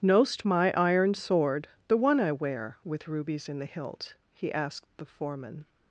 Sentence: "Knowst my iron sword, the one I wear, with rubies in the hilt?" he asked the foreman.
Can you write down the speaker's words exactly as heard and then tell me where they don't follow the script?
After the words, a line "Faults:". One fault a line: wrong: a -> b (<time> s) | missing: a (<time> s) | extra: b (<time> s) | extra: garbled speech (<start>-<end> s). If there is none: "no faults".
"Knowst my iron sword, the one I wear, with rubies in the hilt?" he asked the foreman.
Faults:
no faults